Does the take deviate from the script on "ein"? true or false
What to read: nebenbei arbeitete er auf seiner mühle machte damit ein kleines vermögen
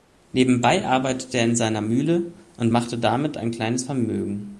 false